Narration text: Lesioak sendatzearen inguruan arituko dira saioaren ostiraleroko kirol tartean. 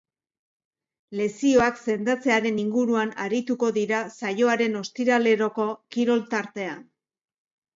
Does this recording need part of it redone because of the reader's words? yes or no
no